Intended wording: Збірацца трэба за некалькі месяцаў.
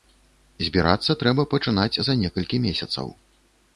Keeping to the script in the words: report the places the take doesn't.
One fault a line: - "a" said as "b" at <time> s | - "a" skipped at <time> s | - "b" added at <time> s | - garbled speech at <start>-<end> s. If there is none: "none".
- "пачынаць" added at 1.5 s